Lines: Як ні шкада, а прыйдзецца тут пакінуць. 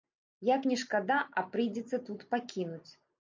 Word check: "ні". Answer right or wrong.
right